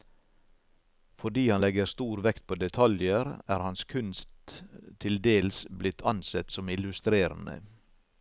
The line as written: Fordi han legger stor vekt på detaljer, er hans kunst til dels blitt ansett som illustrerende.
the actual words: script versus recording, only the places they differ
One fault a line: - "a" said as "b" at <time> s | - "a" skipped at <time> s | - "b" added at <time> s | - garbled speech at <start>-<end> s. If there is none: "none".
none